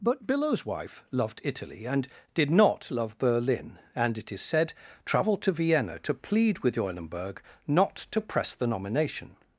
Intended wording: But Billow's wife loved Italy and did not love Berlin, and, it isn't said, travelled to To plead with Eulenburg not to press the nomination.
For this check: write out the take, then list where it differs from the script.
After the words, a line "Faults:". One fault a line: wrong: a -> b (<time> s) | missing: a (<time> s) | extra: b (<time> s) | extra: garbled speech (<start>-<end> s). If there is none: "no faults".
But Billow's wife loved Italy and did not love Berlin, and, it is said, travelled to Vienna to plead with Eulenburg not to press the nomination.
Faults:
wrong: isn't -> is (4.3 s)
extra: Vienna (5.5 s)